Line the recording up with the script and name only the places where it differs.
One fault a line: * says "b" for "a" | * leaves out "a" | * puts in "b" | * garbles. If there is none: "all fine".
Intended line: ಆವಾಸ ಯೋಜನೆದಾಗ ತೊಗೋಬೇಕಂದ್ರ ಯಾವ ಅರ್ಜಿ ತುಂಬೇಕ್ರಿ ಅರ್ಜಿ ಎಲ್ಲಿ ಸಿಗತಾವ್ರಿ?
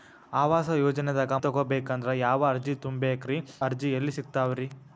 all fine